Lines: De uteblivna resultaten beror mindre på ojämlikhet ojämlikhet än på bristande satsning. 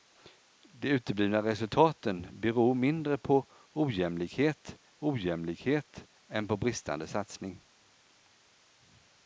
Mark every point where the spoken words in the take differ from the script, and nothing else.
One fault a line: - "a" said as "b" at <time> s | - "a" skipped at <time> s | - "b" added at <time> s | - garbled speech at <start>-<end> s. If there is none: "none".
none